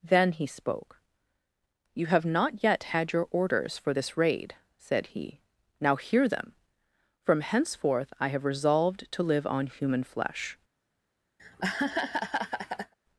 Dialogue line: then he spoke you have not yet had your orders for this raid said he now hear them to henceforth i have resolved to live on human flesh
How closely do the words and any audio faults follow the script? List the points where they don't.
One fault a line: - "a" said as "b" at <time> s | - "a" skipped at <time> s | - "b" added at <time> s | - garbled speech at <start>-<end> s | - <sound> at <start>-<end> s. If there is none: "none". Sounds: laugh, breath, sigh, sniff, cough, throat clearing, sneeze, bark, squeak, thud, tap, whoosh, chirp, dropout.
- "to" said as "from" at 7.2 s
- laugh at 11.4-12.9 s